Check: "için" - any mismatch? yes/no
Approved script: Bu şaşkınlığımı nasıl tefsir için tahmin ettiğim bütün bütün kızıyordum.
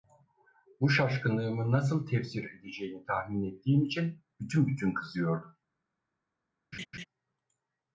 yes